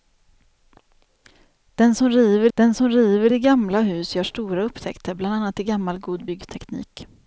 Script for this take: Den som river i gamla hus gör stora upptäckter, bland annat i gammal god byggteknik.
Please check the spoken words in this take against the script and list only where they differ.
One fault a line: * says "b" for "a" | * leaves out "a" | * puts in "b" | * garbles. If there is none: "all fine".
* puts in "den som river"